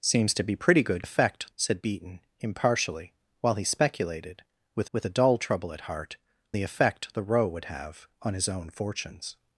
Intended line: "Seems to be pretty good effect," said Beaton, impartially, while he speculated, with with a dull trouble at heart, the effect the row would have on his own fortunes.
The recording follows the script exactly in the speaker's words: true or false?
true